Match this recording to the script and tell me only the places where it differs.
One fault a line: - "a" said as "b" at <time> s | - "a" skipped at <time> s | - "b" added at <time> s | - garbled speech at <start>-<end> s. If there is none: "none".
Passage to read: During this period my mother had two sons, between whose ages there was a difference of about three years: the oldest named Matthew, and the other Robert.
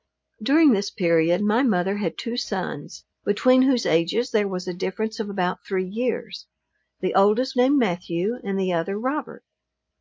none